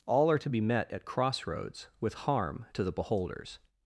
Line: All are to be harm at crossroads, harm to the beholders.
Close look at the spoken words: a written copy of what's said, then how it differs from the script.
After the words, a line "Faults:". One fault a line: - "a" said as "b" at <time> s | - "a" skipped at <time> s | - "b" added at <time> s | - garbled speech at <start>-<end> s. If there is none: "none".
All are to be met at crossroads, with harm to the beholders.
Faults:
- "harm" said as "met" at 0.6 s
- "with" added at 2.0 s